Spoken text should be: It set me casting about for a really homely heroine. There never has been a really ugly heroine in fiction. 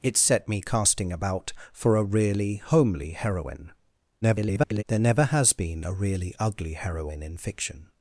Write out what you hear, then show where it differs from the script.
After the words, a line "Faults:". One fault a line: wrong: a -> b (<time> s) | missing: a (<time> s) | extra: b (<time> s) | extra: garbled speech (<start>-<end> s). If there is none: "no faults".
It set me casting about for a really homely heroine. [garbled] There never has been a really ugly heroine in fiction.
Faults:
extra: garbled speech (4.2-4.8 s)